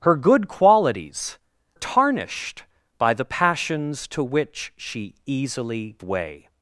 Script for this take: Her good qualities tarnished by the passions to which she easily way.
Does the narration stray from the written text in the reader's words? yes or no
no